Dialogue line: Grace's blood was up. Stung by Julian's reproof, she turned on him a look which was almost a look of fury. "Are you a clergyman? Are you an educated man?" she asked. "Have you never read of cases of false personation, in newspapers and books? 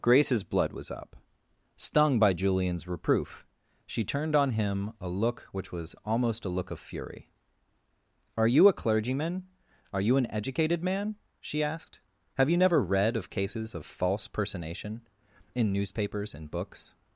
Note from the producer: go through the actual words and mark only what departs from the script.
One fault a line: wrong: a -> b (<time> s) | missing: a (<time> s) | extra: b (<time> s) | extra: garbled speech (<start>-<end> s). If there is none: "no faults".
no faults